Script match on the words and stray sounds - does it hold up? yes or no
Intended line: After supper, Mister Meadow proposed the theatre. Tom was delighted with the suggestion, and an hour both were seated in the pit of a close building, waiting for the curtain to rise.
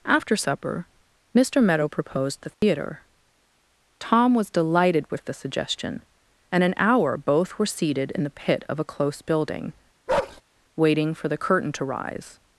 no